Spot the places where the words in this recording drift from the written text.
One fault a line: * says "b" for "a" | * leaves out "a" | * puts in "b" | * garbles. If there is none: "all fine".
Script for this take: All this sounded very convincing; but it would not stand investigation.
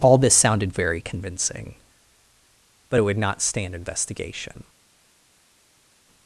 all fine